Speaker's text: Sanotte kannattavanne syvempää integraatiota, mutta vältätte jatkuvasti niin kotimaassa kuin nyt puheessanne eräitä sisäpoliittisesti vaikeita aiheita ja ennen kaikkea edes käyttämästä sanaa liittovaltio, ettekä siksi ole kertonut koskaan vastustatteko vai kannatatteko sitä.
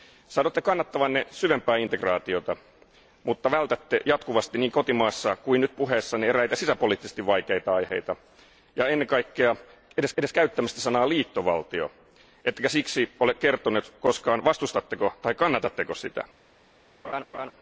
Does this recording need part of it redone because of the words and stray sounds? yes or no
yes